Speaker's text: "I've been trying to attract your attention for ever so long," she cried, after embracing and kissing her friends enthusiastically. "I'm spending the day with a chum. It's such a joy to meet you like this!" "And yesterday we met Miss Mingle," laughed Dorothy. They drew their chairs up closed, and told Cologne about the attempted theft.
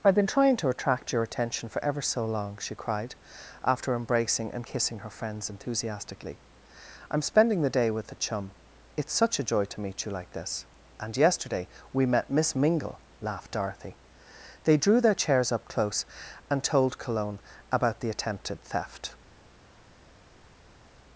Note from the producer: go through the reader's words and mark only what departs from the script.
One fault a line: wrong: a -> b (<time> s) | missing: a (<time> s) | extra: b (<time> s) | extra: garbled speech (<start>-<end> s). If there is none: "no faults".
wrong: closed -> close (15.7 s)